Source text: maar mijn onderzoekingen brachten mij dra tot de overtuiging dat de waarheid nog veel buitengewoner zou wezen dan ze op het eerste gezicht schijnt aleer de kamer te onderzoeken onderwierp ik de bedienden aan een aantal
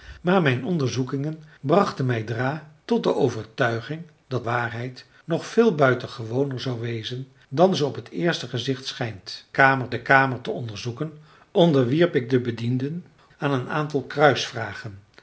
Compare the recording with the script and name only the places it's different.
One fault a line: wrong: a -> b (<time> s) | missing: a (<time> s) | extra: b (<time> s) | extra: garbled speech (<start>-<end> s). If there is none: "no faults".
missing: de (4.5 s)
wrong: aleer -> kamer (9.5 s)